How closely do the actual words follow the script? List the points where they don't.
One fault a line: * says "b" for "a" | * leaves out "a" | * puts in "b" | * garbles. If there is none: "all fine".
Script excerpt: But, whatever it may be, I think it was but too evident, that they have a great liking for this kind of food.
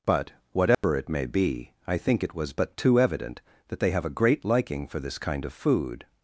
all fine